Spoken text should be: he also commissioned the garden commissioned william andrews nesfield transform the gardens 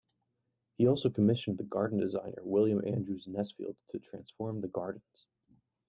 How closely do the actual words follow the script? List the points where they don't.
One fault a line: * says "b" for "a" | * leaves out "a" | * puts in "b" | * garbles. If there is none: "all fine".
* says "designer" for "commissioned"
* puts in "to"